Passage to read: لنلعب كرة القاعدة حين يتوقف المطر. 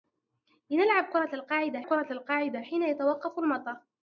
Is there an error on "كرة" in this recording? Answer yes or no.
no